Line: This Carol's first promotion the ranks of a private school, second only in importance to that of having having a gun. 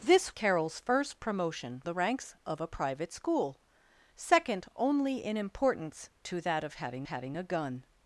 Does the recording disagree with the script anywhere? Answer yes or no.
no